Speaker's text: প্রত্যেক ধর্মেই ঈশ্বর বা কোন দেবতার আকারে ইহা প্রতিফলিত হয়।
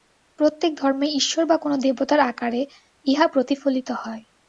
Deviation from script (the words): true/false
false